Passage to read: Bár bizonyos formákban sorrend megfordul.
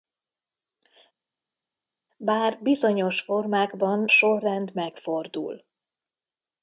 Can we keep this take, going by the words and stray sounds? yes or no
yes